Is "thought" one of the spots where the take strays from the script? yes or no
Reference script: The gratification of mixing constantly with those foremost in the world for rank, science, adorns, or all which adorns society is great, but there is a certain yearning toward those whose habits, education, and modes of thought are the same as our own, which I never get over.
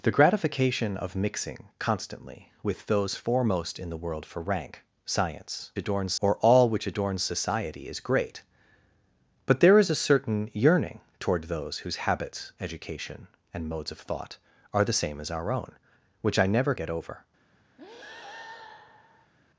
no